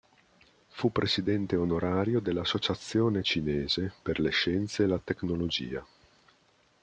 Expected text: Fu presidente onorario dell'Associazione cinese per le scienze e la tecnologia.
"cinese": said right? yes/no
yes